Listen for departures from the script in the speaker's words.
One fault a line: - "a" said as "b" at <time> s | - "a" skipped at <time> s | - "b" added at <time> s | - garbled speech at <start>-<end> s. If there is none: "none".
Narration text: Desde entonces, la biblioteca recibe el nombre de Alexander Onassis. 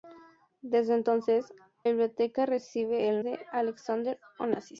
- "la" skipped at 1.5 s
- "nombre" skipped at 3.2 s